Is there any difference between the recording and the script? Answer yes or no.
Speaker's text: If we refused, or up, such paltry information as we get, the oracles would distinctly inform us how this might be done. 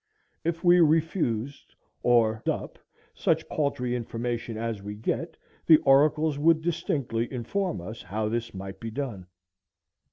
no